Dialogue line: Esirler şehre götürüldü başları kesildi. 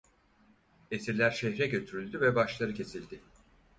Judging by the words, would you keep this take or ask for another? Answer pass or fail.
fail